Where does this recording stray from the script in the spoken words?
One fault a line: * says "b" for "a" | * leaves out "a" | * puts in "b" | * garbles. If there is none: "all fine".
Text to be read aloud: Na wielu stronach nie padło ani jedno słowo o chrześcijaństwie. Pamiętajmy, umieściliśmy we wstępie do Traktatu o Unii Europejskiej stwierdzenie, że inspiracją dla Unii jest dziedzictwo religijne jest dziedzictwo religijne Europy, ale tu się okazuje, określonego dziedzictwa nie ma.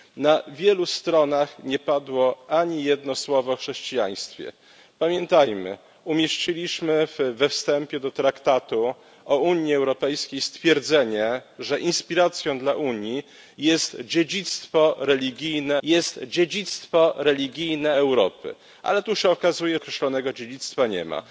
all fine